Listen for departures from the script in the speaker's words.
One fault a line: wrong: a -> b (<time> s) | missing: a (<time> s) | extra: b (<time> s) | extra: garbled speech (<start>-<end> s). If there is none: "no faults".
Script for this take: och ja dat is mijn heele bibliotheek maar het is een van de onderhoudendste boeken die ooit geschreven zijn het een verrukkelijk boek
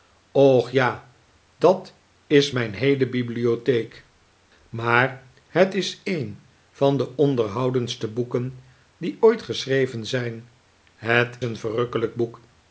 no faults